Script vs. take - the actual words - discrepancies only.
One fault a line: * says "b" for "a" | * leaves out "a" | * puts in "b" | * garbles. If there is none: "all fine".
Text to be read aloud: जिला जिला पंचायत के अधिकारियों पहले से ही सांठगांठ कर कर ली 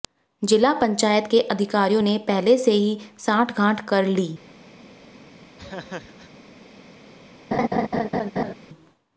* leaves out "जिला"
* puts in "ने"
* leaves out "कर"